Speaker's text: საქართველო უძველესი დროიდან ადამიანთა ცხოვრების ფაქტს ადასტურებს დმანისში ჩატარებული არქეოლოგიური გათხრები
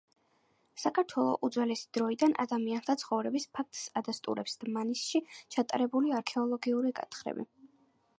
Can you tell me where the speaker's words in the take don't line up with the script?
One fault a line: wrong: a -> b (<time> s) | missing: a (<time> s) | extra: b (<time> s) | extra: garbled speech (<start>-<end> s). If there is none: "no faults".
no faults